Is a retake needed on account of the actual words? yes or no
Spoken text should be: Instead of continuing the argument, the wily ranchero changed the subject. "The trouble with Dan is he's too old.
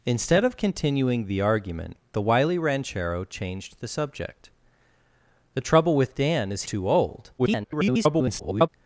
yes